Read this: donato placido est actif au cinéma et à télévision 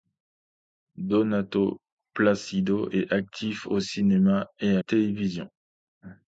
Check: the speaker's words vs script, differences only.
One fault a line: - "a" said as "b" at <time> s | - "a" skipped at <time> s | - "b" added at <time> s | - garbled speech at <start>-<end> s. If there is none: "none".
none